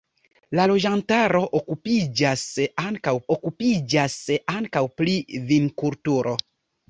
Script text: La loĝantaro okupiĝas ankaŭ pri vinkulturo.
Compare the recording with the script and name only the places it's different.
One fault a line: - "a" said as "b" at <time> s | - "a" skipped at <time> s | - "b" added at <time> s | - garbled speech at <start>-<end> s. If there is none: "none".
- "okupiĝas ankaŭ" added at 3.3 s